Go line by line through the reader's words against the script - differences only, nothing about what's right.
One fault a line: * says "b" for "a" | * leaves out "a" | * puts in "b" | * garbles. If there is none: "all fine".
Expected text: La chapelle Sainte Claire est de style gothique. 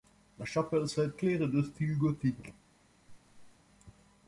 all fine